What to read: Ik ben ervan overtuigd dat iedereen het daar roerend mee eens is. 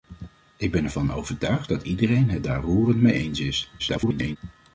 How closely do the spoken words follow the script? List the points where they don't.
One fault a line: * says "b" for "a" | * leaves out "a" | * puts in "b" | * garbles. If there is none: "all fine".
* garbles